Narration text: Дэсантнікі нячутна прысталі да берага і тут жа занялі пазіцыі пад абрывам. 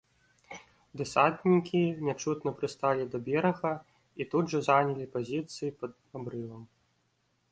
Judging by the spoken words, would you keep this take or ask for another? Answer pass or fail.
pass